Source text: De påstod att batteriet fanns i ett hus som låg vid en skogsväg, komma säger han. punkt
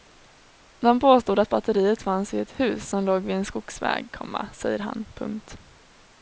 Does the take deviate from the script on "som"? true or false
false